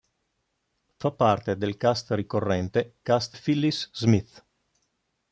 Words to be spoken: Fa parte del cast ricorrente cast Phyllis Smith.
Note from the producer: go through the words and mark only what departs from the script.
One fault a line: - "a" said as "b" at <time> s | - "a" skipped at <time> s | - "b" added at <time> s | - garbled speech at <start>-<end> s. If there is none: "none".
none